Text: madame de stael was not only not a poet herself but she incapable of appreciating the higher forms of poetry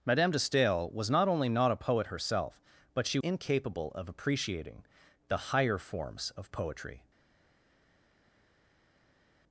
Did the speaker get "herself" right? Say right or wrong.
right